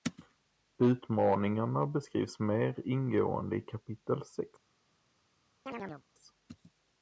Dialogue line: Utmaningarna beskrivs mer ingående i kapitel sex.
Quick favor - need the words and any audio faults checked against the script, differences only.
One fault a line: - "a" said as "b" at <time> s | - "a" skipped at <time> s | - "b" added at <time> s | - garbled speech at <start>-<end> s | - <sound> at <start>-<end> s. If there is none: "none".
- chirp at 5.7-6.0 s